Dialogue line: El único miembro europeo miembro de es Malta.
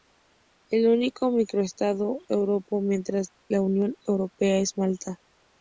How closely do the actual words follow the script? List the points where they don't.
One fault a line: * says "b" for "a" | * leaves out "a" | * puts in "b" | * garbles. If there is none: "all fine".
* says "microestado" for "miembro"
* puts in "la Unión Europea"